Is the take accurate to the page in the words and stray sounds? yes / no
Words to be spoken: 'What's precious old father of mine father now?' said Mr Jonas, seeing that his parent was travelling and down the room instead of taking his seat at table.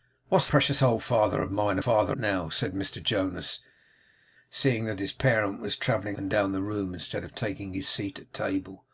yes